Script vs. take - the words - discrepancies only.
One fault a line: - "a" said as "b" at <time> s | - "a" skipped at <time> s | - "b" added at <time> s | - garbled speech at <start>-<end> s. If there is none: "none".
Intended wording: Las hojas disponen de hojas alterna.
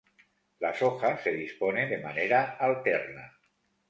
- "se" added at 1.2 s
- "hojas" said as "manera" at 2.0 s